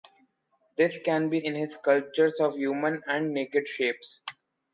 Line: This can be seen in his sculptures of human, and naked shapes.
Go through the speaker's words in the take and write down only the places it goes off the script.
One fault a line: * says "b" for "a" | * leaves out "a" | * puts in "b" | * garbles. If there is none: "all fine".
* leaves out "seen"